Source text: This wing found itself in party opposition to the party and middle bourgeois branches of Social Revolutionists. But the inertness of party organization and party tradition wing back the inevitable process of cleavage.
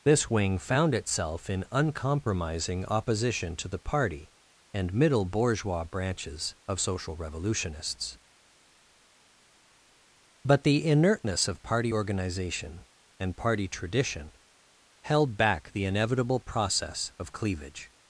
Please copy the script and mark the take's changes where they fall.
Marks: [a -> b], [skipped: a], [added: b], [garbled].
This wing found itself in [party -> uncompromising] opposition to the party and middle bourgeois branches of Social Revolutionists. But the inertness of party organization and party tradition [wing -> held] back the inevitable process of cleavage.